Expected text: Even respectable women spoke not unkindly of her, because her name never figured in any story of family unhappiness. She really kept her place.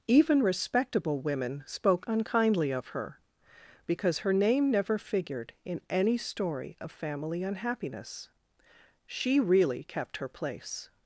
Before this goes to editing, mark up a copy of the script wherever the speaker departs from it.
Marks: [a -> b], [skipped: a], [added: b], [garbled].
Even respectable women spoke [skipped: not] unkindly of her, because her name never figured in any story of family unhappiness. She really kept her place.